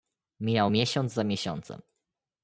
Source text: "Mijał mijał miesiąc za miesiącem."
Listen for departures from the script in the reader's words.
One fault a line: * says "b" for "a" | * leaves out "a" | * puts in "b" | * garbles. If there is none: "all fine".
* leaves out "mijał"